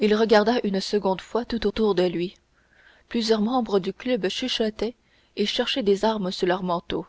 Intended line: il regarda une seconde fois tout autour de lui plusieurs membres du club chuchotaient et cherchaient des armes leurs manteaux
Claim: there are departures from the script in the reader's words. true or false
true